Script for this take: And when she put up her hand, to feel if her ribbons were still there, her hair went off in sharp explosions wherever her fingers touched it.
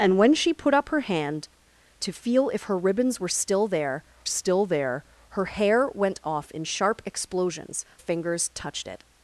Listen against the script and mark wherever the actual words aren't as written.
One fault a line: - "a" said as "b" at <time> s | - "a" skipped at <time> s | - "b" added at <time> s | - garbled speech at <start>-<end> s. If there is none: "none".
- "still there" added at 4.2 s
- "wherever her" skipped at 7.8 s